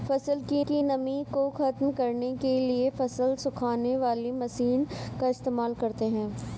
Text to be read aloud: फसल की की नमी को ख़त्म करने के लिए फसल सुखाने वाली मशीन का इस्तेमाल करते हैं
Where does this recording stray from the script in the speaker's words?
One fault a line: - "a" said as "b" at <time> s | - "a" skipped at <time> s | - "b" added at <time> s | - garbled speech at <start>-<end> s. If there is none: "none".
none